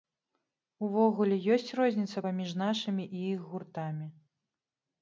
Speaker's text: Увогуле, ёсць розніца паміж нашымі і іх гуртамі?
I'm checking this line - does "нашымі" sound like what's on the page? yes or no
yes